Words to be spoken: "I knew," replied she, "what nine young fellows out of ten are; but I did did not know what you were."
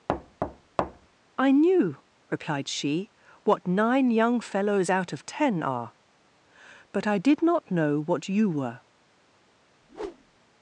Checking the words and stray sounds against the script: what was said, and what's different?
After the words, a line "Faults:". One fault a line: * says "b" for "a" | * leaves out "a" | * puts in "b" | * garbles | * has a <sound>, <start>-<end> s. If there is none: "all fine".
"I knew," replied she, "what nine young fellows out of ten are; but I did not know what you were."
Faults:
* has a thud, 0.1-1.1 s
* leaves out "did"
* has a whoosh, 9.8-10.4 s